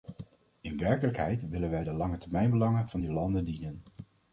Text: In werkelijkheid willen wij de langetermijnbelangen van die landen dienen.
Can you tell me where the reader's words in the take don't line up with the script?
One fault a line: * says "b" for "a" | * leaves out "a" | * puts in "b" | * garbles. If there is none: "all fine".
all fine